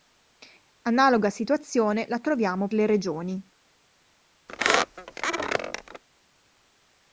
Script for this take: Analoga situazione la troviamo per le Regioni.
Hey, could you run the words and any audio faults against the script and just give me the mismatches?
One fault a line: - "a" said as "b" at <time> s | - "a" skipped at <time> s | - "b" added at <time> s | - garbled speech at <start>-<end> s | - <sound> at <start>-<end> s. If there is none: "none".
- "per" skipped at 2.7 s
- squeak at 4.5-6.0 s